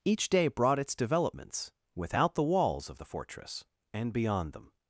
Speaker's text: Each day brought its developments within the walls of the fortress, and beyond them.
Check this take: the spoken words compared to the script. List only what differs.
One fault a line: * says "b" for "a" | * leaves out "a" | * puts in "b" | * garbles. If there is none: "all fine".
* says "without" for "within"